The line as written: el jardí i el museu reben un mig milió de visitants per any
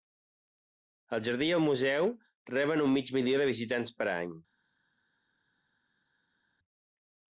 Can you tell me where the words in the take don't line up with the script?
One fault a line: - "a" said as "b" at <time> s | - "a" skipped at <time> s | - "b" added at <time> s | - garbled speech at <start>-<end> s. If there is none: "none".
none